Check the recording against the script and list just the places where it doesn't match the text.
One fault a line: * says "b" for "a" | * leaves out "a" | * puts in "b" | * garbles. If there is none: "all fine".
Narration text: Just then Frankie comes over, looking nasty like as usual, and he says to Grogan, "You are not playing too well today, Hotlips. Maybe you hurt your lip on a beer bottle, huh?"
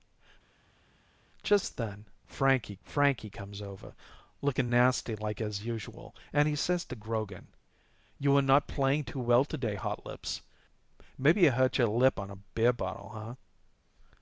* puts in "Frankie"